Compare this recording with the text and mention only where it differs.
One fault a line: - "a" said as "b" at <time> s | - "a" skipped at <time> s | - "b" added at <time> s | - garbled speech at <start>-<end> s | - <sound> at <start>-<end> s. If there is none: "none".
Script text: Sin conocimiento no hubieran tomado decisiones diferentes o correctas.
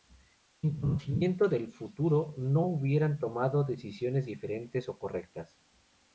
- "del futuro" added at 1.5 s